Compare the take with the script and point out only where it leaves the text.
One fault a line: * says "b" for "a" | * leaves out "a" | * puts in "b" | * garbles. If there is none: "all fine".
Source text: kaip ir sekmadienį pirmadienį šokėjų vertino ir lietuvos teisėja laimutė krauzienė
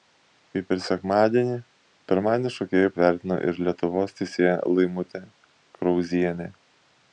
all fine